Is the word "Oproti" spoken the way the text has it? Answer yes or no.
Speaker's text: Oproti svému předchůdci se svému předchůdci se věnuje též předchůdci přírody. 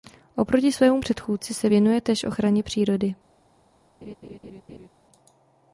yes